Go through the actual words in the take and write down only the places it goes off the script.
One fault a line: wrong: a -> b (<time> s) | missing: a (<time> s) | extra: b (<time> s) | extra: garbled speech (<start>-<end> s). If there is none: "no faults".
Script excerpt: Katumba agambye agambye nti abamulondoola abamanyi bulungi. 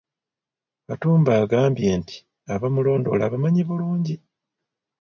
missing: agambye (1.9 s)